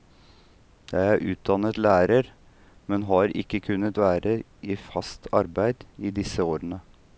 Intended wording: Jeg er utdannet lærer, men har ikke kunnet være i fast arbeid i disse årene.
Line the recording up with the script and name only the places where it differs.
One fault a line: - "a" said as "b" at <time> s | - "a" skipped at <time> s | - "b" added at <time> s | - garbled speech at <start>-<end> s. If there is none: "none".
none